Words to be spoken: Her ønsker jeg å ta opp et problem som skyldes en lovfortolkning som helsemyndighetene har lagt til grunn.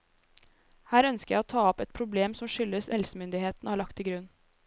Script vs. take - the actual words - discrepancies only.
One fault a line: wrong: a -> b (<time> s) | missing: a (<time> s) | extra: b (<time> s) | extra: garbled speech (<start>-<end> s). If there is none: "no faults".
missing: en lovfortolkning som (2.9 s)